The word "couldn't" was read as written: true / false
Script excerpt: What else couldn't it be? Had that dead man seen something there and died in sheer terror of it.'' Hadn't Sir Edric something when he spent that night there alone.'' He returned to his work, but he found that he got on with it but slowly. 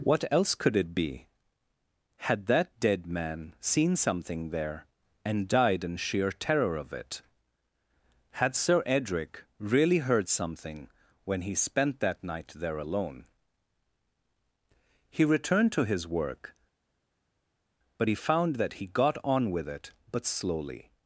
false